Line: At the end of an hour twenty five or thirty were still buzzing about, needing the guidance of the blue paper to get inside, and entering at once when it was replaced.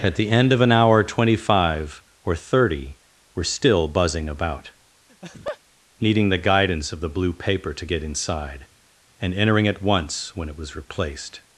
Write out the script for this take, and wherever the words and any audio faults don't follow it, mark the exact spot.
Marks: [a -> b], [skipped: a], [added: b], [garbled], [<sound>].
At the end of an hour twenty five or thirty were still buzzing about, [laugh] needing the guidance of the blue paper to get inside, and entering at once when it was replaced.